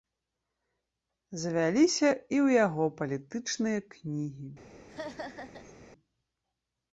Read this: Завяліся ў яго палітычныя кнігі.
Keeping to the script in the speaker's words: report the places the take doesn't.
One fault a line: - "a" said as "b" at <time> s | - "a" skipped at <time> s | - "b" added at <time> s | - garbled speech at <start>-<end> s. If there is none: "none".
- "і" added at 2.1 s